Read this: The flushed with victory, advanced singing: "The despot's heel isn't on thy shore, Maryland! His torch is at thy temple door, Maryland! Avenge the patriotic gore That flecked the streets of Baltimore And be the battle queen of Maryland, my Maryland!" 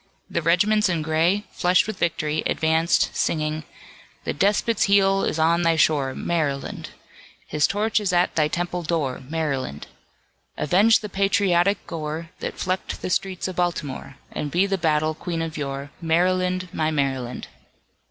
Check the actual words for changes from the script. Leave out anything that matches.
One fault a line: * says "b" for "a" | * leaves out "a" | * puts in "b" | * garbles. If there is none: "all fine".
* puts in "regiments in gray"
* says "is" for "isn't"
* puts in "yore"